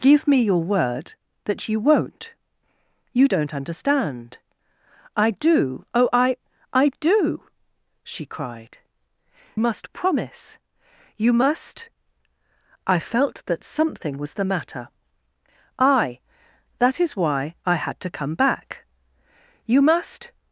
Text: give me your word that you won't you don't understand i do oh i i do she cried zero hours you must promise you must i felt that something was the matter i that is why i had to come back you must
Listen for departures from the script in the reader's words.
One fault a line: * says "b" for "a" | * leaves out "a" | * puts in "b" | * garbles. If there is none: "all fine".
* leaves out "zero hours you"